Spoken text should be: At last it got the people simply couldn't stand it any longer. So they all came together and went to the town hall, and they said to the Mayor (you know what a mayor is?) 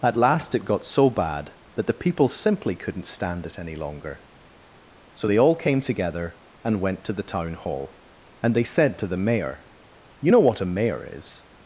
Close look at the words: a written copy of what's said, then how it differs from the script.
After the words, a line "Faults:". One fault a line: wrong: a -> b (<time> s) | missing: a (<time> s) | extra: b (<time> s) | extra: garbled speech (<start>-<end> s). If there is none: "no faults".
At last it got so bad that the people simply couldn't stand it any longer. So they all came together and went to the town hall, and they said to the Mayor (you know what a mayor is?)
Faults:
extra: so bad that (0.8 s)